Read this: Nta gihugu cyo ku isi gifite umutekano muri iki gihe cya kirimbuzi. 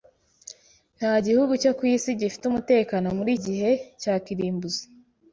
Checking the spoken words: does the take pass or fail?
fail